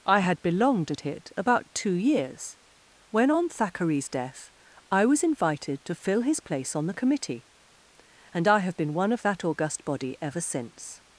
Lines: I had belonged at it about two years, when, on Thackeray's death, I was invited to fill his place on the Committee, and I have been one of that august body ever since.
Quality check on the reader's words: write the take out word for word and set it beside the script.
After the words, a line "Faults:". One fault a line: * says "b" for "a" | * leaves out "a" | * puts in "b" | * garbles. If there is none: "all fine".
I had belonged at it about two years, when, on Thackeray's death, I was invited to fill his place on the Committee, and I have been one of that august body ever since.
Faults:
all fine